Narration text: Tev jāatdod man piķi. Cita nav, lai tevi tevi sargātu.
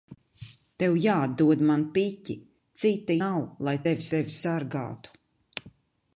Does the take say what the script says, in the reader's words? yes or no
yes